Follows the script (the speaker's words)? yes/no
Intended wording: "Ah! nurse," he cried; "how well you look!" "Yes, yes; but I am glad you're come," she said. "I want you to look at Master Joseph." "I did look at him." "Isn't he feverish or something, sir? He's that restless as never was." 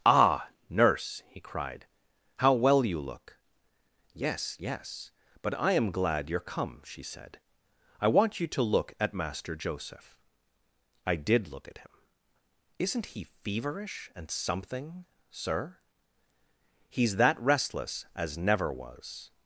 no